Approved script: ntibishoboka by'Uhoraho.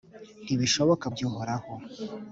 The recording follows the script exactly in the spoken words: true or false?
true